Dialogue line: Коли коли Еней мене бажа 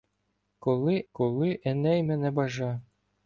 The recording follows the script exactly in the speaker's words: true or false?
true